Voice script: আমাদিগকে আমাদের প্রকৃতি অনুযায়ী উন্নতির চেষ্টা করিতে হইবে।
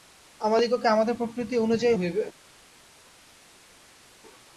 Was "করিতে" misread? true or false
true